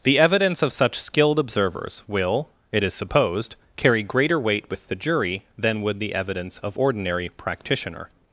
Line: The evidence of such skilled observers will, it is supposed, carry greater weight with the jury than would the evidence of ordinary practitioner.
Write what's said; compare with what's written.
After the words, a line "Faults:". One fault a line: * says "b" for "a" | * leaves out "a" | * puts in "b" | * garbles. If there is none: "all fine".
The evidence of such skilled observers will, it is supposed, carry greater weight with the jury than would the evidence of ordinary practitioner.
Faults:
all fine